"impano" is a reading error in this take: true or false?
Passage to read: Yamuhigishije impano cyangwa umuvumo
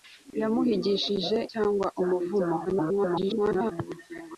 true